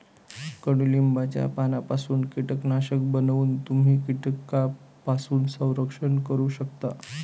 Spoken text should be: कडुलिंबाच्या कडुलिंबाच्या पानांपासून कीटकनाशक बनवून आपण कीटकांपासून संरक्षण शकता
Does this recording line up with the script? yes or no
no